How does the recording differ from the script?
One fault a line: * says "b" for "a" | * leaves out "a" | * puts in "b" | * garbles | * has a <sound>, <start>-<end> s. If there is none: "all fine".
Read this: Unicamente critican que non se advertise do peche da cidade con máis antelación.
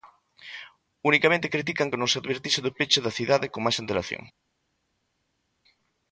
all fine